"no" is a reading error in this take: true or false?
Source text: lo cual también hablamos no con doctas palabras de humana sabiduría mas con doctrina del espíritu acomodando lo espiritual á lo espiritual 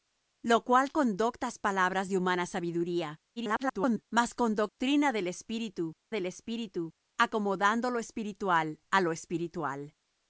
true